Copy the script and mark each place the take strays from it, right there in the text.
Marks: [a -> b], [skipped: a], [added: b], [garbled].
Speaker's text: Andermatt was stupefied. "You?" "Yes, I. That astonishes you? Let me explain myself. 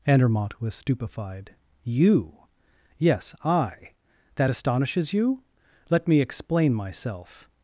Andermatt was stupefied. "You?" "Yes, I. That astonishes you? Let me explain myself.